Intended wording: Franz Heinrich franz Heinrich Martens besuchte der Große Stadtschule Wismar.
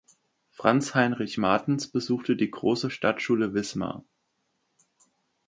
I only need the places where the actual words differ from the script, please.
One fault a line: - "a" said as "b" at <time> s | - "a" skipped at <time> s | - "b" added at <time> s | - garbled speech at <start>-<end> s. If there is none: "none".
- "franz Heinrich" skipped at 1.4 s
- "der" said as "die" at 2.4 s